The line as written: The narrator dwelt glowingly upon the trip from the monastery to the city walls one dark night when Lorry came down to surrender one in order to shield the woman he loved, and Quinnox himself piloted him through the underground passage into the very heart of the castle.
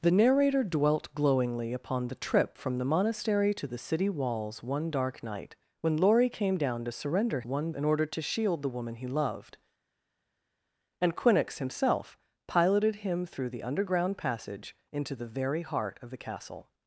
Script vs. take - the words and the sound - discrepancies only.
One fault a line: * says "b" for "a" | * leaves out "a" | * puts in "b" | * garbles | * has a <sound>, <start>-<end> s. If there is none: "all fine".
all fine